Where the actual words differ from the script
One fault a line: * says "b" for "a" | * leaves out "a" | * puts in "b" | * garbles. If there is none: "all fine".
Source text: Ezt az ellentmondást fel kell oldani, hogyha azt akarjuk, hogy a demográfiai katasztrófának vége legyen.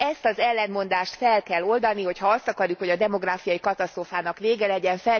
all fine